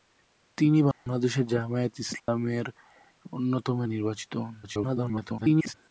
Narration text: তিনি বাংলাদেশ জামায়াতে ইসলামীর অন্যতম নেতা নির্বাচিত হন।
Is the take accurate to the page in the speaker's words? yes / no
no